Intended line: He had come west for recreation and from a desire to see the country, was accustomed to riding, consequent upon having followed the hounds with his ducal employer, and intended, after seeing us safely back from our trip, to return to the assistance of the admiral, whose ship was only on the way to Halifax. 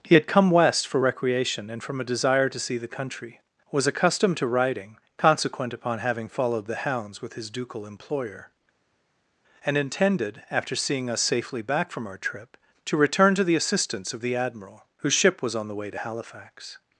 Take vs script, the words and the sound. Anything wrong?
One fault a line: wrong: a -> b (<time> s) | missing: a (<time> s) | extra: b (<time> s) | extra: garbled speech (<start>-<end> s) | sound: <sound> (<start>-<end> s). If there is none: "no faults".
missing: only (15.5 s)